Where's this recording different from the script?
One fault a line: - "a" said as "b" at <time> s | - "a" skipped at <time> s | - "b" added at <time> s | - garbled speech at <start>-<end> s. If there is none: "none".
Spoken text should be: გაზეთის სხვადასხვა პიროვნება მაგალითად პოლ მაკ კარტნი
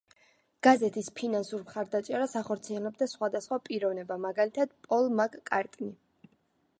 - "ფინანსურ მხარდაჭერას ახორციელებდა" added at 1.2 s